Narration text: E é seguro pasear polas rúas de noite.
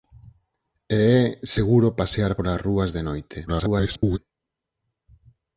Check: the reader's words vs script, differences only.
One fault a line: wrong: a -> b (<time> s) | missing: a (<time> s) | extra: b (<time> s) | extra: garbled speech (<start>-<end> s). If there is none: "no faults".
extra: garbled speech (3.5-4.2 s)